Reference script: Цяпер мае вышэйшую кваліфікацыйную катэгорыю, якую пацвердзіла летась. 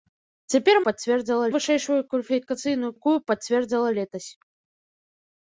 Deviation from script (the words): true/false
true